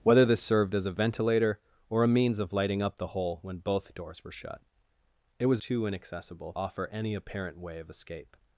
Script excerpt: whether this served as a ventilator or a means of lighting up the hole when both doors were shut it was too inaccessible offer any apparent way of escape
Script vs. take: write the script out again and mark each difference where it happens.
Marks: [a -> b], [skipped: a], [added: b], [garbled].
whether this served as a ventilator or a means of lighting up the hole when both doors were shut it was too inaccessible offer any apparent way of escape